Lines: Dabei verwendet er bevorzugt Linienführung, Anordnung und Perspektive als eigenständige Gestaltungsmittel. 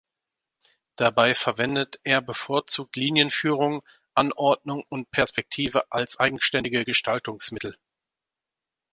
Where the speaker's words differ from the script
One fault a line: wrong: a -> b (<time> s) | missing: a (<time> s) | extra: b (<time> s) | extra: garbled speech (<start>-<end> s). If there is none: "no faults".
no faults